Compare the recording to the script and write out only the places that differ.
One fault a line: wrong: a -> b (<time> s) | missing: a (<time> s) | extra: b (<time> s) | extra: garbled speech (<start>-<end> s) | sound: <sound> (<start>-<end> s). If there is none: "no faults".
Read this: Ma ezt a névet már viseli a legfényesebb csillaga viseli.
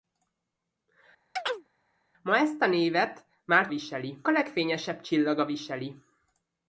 sound: chirp (1.4-1.7 s)